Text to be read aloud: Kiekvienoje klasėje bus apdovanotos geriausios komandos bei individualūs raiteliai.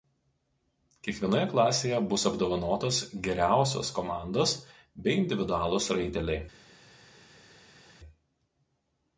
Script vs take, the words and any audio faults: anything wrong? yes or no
no